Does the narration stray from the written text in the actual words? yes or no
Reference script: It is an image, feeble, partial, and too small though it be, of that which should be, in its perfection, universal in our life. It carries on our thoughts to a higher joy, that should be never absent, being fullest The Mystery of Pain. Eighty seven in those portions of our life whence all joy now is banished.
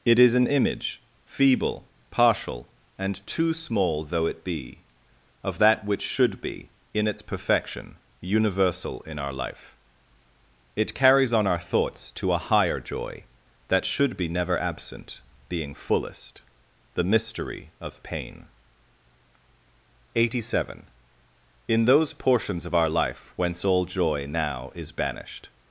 no